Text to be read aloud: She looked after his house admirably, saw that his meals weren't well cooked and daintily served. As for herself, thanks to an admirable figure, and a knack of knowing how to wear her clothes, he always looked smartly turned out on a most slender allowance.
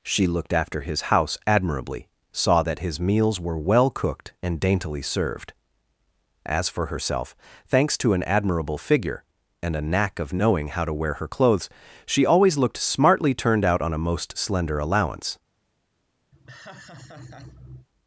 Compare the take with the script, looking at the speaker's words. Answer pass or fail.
fail